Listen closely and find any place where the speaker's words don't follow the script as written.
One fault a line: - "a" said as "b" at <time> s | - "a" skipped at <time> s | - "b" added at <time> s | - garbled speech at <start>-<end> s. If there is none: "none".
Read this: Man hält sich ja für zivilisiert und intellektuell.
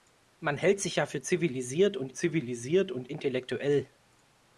- "zivilisiert und" added at 2.1 s